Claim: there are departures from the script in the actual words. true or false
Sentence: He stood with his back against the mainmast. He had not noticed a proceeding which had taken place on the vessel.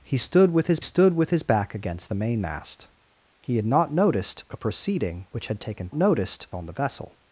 true